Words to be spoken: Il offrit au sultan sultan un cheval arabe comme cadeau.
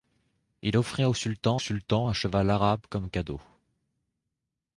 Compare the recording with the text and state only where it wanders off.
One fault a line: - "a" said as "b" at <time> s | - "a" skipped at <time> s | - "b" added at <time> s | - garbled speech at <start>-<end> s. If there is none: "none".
none